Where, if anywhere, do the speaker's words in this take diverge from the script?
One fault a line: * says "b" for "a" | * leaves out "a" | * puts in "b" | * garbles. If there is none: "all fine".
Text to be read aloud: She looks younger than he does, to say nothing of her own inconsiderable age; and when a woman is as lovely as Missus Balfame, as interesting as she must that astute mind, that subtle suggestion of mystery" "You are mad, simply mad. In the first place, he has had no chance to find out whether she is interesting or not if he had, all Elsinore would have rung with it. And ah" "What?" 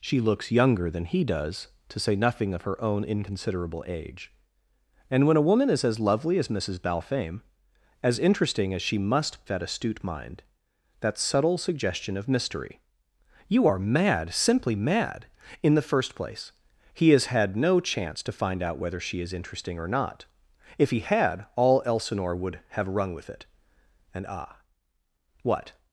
all fine